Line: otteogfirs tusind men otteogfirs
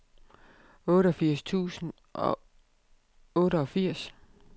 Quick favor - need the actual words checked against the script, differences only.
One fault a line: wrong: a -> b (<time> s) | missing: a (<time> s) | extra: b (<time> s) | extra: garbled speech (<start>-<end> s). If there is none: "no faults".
wrong: men -> og (2.1 s)